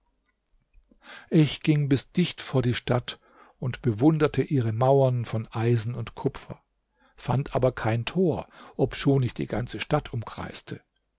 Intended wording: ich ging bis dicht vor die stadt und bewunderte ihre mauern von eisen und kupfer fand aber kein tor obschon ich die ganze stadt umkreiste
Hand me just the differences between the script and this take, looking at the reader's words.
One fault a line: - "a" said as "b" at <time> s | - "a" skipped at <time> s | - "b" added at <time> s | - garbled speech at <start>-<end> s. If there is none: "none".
none